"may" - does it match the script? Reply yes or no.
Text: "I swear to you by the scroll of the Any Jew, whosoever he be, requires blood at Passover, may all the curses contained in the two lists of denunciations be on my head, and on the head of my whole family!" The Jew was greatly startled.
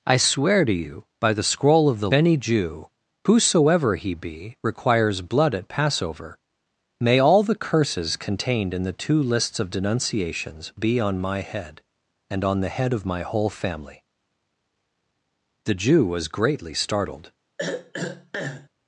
yes